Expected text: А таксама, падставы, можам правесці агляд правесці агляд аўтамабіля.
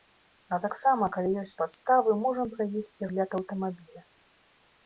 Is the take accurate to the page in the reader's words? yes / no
no